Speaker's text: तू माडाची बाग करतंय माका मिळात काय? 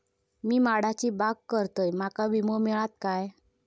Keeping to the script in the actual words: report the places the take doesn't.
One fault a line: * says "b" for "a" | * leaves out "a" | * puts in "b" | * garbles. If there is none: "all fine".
* says "मी" for "तू"
* puts in "विमो"